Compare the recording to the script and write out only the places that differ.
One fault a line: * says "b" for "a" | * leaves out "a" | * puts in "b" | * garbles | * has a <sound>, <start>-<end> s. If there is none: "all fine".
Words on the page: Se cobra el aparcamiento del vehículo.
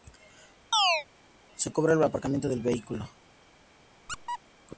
* has a chirp, 0.7-1.1 s
* has a squeak, 4.1-4.4 s